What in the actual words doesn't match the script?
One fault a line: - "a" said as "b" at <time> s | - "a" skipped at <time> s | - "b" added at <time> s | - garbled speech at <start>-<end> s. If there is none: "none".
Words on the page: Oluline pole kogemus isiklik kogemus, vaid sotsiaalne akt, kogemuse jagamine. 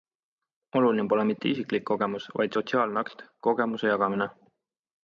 - "kogemus" said as "mitte" at 1.3 s